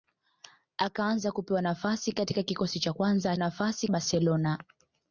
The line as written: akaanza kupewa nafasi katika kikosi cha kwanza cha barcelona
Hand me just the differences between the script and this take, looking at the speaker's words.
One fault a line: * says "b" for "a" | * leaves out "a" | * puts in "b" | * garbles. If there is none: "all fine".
* says "nafasi" for "cha"